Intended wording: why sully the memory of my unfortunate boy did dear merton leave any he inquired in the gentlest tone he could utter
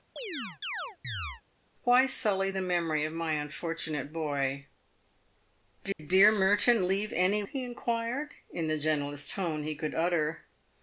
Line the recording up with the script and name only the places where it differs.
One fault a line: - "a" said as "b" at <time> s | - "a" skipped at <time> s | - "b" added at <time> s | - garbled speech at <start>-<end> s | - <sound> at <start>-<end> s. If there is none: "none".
- chirp at 0.2-1.4 s
- dropout at 5.9-6.0 s